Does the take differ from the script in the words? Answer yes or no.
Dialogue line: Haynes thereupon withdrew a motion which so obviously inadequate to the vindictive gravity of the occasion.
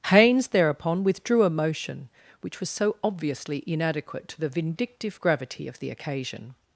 yes